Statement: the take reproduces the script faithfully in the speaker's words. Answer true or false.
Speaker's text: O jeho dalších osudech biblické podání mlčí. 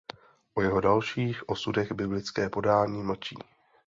true